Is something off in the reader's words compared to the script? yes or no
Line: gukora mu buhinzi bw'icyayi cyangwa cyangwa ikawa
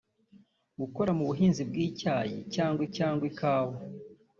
no